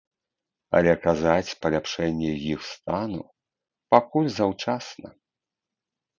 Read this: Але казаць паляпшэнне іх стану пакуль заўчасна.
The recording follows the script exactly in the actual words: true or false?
true